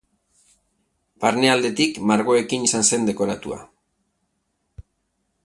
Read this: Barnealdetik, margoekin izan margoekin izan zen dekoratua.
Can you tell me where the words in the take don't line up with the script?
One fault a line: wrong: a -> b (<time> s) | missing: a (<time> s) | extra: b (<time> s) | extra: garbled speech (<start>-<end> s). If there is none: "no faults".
missing: margoekin izan (2.9 s)